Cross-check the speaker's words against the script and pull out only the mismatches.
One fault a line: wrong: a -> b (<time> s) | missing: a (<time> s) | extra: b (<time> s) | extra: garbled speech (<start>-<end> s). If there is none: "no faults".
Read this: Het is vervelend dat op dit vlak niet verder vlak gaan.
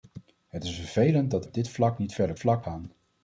no faults